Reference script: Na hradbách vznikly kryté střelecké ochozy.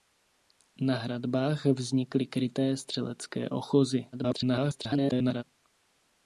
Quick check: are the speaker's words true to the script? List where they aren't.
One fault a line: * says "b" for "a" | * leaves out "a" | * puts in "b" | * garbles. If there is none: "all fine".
* garbles